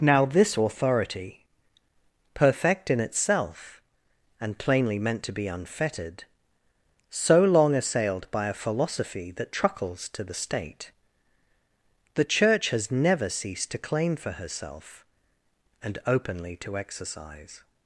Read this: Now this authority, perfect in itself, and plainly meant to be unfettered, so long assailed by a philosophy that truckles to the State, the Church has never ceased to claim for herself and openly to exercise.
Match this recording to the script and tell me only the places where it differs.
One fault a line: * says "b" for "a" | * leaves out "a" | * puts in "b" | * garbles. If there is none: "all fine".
all fine